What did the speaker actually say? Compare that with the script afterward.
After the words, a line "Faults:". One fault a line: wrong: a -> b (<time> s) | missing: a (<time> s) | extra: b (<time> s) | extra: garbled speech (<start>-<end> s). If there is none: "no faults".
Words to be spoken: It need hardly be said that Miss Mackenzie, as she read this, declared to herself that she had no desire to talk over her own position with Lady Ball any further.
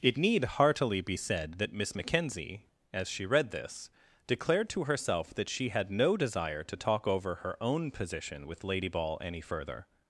It need heartily be said that Miss Mackenzie, as she read this, declared to herself that she had no desire to talk over her own position with Lady Ball any further.
Faults:
wrong: hardly -> heartily (0.4 s)